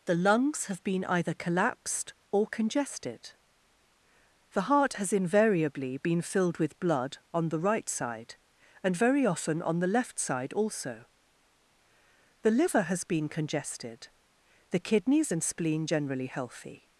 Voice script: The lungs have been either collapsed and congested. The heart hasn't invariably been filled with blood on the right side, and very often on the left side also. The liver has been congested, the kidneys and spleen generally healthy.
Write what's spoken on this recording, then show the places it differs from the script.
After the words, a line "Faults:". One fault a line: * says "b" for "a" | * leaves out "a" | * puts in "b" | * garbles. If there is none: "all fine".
The lungs have been either collapsed or congested. The heart has invariably been filled with blood on the right side, and very often on the left side also. The liver has been congested, the kidneys and spleen generally healthy.
Faults:
* says "or" for "and"
* says "has" for "hasn't"